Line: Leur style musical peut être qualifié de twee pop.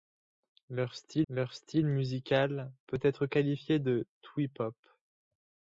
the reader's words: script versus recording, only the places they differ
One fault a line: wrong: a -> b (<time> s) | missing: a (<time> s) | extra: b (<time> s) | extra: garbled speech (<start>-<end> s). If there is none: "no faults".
extra: leur style (1.3 s)